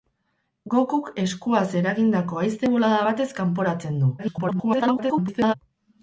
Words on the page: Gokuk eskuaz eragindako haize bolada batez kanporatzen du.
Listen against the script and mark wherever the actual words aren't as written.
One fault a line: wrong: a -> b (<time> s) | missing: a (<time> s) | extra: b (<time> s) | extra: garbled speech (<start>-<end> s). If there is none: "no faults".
extra: garbled speech (4.2-5.5 s)